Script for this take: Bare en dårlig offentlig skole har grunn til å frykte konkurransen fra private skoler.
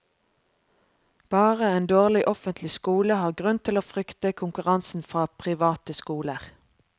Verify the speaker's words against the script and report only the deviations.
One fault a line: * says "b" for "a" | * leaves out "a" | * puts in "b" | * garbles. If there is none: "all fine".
all fine